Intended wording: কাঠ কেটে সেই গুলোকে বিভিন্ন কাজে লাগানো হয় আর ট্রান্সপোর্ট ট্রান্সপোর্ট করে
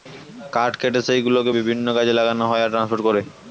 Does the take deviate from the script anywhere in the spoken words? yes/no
yes